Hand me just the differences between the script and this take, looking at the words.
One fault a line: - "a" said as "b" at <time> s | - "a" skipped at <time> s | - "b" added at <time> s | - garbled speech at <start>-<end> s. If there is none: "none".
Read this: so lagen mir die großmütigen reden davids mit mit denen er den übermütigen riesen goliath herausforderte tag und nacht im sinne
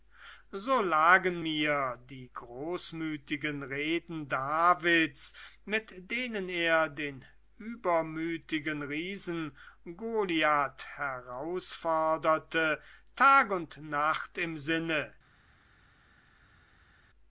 - "mit" skipped at 6.1 s